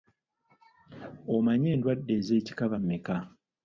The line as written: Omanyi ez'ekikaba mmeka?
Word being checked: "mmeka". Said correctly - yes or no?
yes